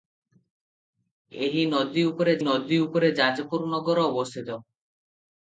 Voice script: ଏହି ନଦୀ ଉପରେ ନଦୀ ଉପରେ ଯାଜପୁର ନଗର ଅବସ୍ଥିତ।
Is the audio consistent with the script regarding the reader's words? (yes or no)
yes